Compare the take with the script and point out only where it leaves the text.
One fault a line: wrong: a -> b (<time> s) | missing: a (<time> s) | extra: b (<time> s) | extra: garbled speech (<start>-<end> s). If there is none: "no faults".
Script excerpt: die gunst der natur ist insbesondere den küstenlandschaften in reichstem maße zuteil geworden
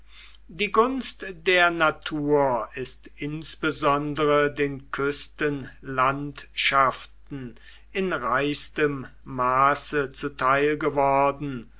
no faults